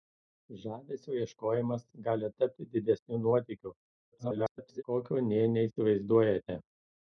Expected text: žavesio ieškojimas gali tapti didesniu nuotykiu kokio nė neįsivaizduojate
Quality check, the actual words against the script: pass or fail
fail